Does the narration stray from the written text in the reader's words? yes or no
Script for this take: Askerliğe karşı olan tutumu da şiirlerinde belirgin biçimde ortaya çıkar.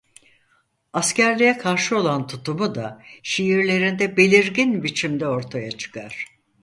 no